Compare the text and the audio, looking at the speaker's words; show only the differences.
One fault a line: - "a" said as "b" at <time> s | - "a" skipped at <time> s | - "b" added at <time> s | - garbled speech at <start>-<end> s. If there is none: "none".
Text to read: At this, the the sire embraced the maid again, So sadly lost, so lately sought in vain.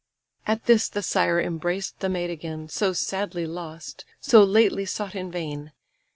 - "the" skipped at 1.0 s